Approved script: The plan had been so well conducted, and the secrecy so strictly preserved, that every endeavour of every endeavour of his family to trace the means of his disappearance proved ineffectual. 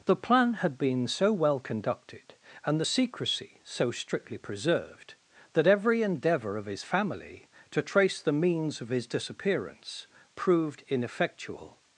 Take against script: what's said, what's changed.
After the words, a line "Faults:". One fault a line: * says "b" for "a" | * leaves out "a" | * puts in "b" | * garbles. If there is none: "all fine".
The plan had been so well conducted, and the secrecy so strictly preserved, that every endeavour of his family to trace the means of his disappearance proved ineffectual.
Faults:
* leaves out "every endeavour of"